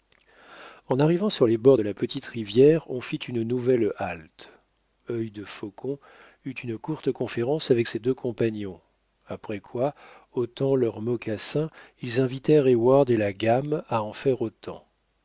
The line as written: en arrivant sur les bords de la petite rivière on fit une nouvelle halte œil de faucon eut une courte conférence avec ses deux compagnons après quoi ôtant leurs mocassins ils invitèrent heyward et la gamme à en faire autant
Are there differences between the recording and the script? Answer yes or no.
no